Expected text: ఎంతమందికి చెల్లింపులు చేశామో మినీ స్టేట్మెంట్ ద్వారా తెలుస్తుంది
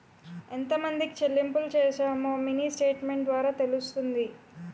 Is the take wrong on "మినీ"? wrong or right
right